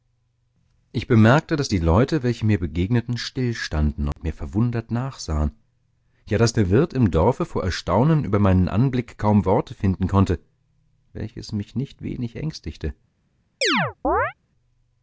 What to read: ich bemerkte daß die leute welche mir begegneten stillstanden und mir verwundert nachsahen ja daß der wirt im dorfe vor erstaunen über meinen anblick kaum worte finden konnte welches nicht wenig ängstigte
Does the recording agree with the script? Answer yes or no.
no